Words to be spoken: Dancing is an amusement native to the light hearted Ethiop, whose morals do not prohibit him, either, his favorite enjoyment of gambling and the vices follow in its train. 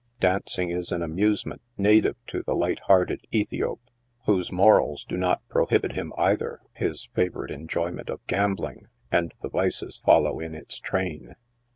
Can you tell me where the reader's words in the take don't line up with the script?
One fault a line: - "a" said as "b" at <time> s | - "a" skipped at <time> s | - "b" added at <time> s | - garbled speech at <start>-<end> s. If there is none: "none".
none